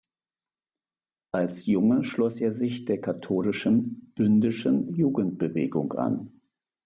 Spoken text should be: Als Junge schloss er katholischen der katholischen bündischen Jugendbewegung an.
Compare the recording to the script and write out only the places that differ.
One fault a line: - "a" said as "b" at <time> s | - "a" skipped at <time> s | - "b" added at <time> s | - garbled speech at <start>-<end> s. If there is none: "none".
- "katholischen" said as "sich" at 2.5 s